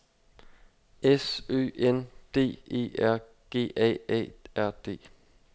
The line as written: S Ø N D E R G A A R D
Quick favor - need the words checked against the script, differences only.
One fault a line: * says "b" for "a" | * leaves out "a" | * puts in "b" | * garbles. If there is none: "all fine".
all fine